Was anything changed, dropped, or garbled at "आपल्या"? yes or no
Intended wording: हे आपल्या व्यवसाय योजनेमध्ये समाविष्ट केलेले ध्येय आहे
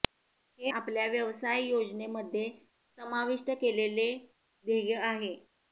no